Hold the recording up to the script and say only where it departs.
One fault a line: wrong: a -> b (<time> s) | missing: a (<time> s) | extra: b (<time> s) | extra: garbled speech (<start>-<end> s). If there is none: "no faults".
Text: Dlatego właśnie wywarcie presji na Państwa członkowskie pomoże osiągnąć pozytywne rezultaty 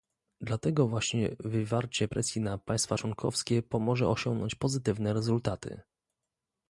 no faults